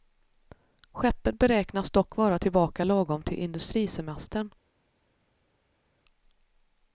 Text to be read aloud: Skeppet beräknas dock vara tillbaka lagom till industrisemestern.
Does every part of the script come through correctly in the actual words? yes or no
yes